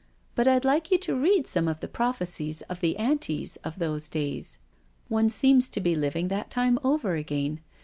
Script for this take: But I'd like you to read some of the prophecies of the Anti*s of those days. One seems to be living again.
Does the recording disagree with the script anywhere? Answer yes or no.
yes